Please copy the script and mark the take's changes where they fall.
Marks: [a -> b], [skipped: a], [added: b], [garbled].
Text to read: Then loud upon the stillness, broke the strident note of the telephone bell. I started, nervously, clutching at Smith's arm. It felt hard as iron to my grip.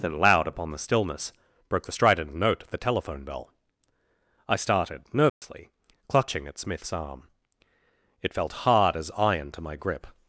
Then loud upon the stillness, broke the strident note of the telephone bell. I started, nervously, clutching at Smith's arm. It felt hard as iron to my grip.